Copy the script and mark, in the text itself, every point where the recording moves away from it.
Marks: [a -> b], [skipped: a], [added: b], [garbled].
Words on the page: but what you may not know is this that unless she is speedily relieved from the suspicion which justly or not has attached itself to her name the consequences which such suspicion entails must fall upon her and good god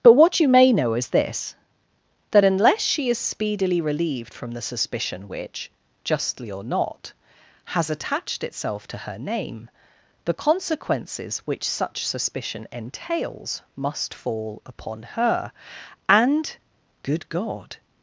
but what you may [skipped: not] know is this that unless she is speedily relieved from the suspicion which justly or not has attached itself to her name the consequences which such suspicion entails must fall upon her and good god